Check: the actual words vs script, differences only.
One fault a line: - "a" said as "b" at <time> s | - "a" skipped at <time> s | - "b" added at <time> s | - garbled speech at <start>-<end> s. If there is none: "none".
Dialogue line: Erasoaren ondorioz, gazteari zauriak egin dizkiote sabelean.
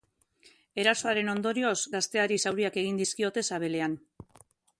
none